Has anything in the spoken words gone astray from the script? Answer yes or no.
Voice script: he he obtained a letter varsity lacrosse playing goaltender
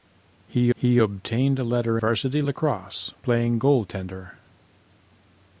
no